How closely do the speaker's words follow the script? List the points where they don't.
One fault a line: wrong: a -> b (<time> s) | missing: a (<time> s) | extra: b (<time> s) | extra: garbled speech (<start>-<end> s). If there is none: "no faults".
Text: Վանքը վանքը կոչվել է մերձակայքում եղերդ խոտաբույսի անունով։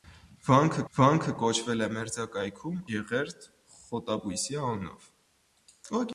no faults